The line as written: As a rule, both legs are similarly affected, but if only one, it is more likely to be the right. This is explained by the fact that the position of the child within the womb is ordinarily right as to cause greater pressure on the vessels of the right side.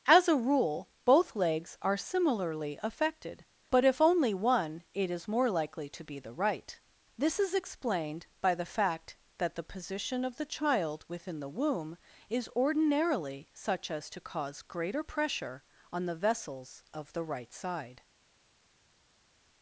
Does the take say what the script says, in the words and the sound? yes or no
no